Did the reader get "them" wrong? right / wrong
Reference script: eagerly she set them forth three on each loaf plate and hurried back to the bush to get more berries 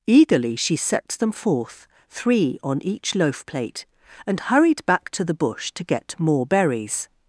right